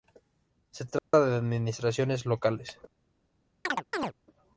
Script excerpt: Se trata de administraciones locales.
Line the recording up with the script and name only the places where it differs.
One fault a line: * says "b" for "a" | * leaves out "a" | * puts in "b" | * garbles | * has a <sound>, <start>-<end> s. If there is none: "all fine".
* has a dropout, 1.0-1.1 s
* has a chirp, 3.6-4.1 s